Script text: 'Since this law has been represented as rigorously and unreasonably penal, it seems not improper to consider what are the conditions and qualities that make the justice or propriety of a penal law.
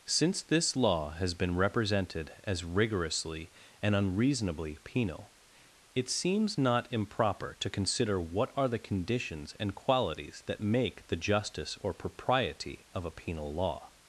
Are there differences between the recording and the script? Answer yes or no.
no